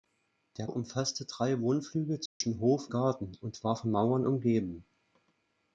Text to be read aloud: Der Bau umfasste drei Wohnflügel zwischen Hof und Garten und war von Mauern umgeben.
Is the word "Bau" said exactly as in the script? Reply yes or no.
no